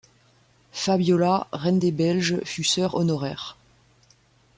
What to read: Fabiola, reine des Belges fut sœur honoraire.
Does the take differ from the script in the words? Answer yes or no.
no